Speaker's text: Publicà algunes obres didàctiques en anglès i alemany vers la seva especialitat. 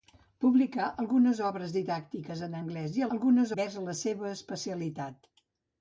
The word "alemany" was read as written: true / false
false